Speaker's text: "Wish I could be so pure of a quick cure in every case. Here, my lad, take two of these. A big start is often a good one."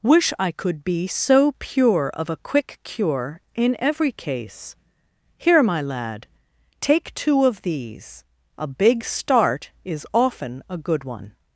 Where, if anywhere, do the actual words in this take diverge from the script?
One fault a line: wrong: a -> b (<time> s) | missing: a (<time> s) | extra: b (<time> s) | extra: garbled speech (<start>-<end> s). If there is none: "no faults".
no faults